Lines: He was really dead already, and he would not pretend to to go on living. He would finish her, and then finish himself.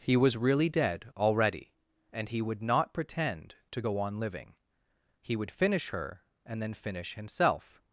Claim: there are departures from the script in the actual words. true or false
true